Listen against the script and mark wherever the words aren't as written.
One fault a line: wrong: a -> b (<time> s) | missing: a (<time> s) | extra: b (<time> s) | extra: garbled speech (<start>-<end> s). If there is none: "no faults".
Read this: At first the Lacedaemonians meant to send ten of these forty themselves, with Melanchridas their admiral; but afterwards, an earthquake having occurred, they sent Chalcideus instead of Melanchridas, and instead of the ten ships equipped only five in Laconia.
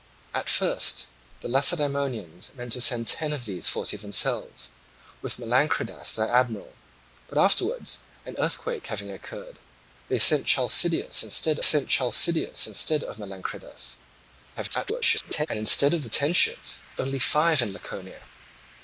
extra: sent Chalcideus instead (11.6 s)
extra: garbled speech (14.6-15.5 s)
missing: equipped (16.8 s)